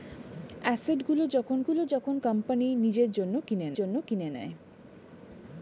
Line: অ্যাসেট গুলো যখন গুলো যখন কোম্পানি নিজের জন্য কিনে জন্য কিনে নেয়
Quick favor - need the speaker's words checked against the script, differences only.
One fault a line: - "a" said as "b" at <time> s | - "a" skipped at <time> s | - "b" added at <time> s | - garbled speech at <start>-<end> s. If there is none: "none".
none